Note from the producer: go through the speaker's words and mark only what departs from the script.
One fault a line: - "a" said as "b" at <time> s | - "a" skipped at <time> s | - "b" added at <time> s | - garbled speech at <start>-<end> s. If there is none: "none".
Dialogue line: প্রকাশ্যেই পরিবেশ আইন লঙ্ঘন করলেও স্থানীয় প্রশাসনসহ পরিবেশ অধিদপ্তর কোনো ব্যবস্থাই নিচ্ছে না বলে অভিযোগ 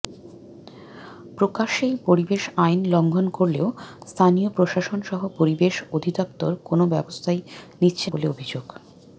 - "না" skipped at 8.1 s